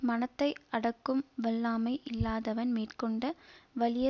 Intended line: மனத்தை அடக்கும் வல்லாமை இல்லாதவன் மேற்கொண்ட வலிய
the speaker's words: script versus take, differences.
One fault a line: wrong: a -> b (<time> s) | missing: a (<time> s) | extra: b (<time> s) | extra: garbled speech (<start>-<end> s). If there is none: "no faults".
no faults